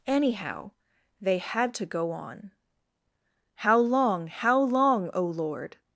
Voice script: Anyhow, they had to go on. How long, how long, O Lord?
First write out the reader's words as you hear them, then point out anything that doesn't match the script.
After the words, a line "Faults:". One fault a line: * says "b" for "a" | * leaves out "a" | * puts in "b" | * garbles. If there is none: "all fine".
Anyhow, they had to go on. How long, how long, O Lord?
Faults:
all fine